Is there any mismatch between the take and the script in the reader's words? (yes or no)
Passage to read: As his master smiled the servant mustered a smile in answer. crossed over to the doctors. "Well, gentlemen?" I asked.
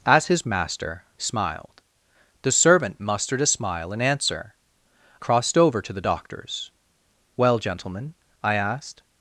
no